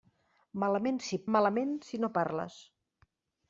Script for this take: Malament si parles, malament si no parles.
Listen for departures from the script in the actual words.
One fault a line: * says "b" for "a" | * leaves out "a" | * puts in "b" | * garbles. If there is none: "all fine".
* leaves out "parles"